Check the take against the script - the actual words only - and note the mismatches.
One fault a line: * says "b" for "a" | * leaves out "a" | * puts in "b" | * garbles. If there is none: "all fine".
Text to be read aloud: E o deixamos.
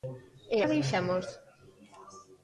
all fine